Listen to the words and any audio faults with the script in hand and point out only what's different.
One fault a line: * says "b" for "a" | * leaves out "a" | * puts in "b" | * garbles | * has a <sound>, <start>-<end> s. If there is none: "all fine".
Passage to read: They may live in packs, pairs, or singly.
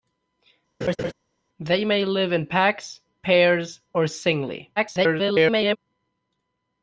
* has a laugh, 0.8-1.1 s
* garbles